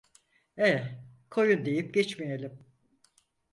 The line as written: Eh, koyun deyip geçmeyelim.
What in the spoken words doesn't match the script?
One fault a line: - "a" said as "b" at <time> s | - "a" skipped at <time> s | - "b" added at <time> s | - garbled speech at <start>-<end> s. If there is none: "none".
none